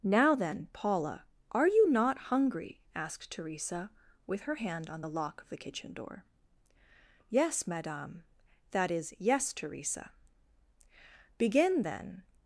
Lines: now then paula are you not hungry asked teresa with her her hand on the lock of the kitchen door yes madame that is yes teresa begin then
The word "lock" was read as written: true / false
true